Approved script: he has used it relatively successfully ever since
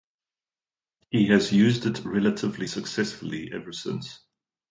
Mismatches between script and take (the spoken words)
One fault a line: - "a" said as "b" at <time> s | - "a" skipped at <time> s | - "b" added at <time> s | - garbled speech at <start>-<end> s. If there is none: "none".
none